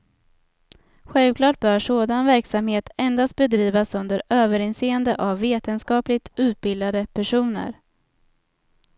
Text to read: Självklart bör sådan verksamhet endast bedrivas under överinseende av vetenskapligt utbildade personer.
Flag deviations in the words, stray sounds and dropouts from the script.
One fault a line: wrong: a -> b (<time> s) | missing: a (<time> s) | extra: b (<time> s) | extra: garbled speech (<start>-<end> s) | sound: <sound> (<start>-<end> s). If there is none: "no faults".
no faults